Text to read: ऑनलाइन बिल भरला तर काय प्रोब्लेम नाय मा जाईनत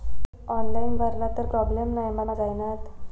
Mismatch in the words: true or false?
true